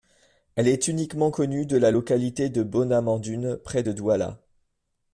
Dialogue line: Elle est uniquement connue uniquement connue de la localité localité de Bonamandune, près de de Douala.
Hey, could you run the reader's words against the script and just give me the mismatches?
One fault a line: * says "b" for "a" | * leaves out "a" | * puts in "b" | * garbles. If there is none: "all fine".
* leaves out "uniquement connue"
* leaves out "localité"
* leaves out "de"